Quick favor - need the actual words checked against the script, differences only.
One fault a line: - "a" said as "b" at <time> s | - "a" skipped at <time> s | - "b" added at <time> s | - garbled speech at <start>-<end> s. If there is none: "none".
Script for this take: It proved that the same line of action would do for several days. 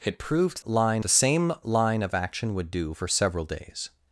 - "that" said as "line" at 0.6 s